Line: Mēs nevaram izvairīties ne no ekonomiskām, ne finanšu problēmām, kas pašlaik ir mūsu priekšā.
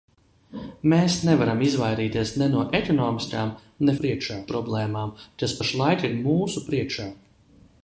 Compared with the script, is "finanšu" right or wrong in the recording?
wrong